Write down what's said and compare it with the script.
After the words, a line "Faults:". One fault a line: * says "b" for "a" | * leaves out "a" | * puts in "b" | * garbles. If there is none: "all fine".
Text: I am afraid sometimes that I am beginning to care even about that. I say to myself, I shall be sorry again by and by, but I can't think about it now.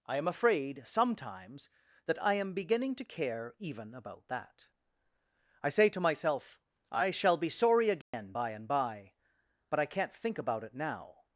I am afraid sometimes that I am beginning to care even about that. I say to myself, I shall be sorry again by and by, but I can't think about it now.
Faults:
all fine